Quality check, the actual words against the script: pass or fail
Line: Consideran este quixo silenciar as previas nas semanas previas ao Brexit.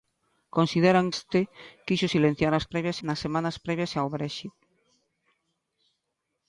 pass